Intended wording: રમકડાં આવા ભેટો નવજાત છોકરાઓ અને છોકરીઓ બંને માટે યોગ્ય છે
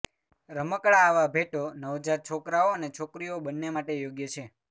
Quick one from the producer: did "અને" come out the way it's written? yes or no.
yes